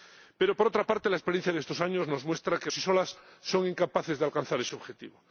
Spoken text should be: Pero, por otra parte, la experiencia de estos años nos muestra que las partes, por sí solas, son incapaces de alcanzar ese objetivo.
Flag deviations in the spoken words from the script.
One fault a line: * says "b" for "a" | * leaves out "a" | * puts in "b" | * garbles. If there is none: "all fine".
* leaves out "las partes por"